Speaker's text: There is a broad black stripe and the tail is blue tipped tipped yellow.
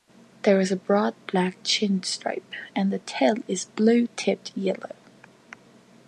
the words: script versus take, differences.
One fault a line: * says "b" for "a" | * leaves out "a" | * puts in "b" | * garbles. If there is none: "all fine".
* puts in "chin"
* leaves out "tipped"